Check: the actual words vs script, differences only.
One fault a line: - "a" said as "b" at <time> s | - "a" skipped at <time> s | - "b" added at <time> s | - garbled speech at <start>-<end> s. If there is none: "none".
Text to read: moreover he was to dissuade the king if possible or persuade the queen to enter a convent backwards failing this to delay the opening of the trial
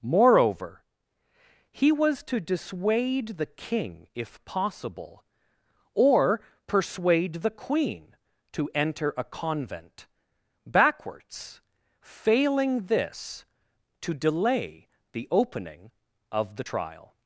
none